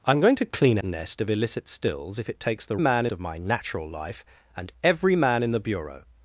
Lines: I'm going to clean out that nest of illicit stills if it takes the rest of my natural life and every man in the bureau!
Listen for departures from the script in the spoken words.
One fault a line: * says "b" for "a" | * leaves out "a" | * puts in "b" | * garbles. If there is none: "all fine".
* leaves out "out that"
* says "man" for "rest"